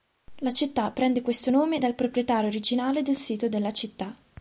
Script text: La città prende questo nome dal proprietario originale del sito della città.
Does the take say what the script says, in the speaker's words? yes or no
yes